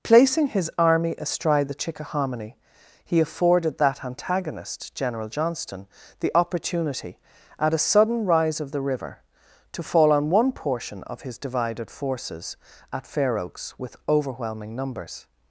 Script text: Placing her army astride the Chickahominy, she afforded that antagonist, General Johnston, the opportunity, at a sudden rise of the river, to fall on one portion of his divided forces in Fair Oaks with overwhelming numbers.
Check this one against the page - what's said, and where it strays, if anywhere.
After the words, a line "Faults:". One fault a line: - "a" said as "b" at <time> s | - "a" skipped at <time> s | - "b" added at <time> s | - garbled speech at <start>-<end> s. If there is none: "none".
Placing his army astride the Chickahominy, he afforded that antagonist, General Johnston, the opportunity, at a sudden rise of the river, to fall on one portion of his divided forces at Fair Oaks with overwhelming numbers.
Faults:
- "her" said as "his" at 0.5 s
- "she" said as "he" at 3.0 s
- "in" said as "at" at 12.9 s